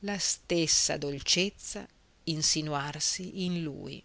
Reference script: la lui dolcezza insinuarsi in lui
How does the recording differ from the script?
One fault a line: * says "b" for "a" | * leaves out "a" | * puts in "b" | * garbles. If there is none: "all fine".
* says "stessa" for "lui"